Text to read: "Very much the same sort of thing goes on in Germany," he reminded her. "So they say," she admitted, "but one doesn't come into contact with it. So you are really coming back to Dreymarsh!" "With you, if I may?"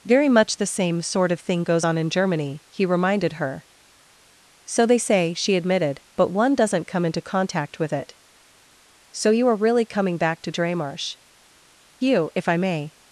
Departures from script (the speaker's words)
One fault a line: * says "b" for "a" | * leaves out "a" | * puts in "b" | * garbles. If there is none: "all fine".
* leaves out "With"